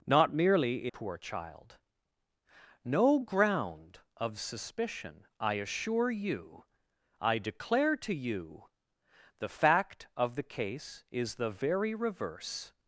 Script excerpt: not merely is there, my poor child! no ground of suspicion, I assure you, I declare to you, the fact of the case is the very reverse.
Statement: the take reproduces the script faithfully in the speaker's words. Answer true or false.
false